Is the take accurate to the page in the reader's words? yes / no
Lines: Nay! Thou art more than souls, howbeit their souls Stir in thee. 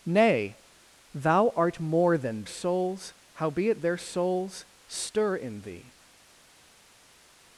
yes